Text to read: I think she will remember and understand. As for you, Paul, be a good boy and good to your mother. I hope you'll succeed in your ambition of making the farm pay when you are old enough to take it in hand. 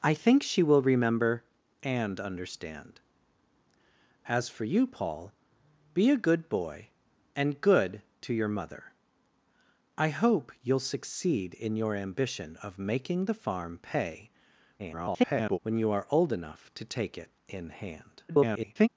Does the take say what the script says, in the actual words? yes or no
no